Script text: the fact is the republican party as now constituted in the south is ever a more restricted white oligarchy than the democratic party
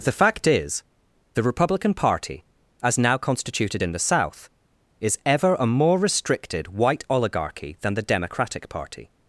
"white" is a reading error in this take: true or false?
false